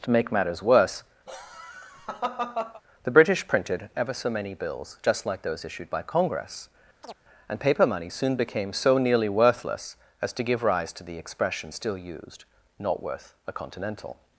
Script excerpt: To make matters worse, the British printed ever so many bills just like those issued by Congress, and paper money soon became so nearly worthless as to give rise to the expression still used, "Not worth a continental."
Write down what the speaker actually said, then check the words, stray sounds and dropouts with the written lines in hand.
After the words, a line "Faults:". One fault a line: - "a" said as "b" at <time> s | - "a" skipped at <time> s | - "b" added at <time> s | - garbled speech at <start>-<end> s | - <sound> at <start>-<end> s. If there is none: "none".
To make matters worse, the British printed ever so many bills just like those issued by Congress, and paper money soon became so nearly worthless as to give rise to the expression still used, "Not worth a continental."
Faults:
- laugh at 1.3-2.8 s
- chirp at 7.0-7.2 s